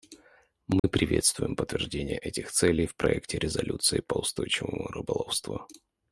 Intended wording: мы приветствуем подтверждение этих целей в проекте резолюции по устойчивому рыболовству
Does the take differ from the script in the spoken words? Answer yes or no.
no